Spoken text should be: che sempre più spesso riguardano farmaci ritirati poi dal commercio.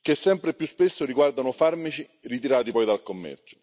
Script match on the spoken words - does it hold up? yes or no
yes